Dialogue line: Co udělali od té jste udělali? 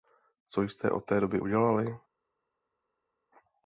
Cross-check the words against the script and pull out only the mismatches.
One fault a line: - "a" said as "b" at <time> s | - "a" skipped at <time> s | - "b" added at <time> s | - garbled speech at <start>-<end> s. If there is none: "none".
- "udělali" said as "jste" at 0.6 s
- "jste" said as "doby" at 1.2 s